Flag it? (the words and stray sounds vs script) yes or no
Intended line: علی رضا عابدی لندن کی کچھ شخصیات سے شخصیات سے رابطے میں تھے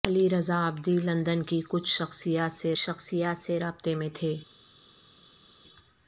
no